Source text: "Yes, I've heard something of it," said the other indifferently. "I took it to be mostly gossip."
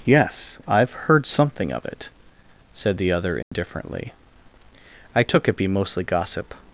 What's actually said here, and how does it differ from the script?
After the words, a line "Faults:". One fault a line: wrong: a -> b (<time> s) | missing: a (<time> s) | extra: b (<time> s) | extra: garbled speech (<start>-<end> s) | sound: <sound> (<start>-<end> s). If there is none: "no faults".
"Yes, I've heard something of it," said the other indifferently. "I took it be mostly gossip."
Faults:
sound: dropout (3.4-3.5 s)
missing: to (5.6 s)